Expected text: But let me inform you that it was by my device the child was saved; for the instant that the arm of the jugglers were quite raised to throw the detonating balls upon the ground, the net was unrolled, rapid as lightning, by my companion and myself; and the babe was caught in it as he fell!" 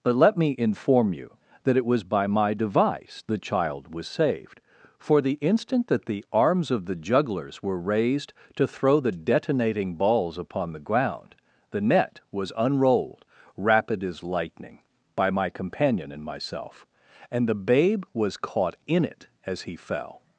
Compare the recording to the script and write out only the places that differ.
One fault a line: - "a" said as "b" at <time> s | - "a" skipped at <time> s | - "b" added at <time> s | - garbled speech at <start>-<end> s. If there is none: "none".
- "arm" said as "arms" at 6.3 s
- "quite" skipped at 7.8 s